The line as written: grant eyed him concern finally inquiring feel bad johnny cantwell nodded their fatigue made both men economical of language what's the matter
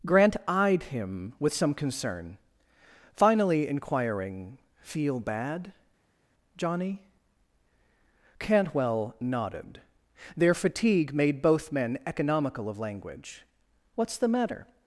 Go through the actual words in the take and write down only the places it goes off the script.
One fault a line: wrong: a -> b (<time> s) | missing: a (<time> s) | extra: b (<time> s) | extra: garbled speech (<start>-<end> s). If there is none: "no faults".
extra: with some (1.4 s)